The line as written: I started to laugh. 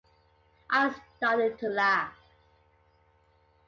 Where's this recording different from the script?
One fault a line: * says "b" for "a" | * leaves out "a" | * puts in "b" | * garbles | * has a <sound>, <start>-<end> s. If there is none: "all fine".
all fine